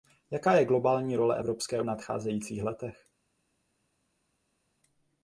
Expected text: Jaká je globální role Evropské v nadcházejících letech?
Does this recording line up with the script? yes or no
yes